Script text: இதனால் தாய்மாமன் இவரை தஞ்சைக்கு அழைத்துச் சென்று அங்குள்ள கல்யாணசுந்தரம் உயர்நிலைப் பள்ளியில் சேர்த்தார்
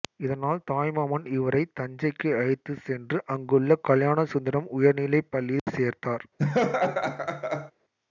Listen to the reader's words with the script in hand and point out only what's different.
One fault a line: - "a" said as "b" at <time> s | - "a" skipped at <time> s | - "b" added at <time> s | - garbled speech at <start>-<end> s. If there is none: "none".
none